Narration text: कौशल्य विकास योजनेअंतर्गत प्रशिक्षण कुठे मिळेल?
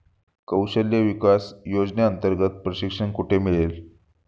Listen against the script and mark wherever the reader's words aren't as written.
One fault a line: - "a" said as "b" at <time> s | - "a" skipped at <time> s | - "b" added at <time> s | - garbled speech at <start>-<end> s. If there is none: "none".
none